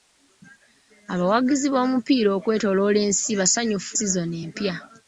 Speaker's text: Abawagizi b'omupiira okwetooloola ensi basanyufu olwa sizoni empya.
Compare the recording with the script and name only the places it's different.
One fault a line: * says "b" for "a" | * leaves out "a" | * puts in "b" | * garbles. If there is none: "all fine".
* leaves out "olwa"